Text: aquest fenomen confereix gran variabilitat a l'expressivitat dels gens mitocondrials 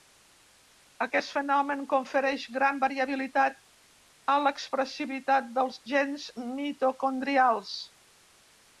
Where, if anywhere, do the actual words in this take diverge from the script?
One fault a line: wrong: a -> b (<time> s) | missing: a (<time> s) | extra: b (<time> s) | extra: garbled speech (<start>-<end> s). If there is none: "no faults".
no faults